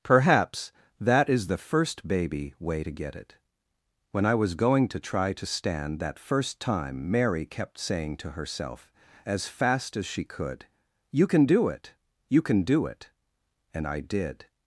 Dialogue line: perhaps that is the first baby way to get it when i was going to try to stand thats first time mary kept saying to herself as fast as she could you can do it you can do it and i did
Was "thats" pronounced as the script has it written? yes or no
no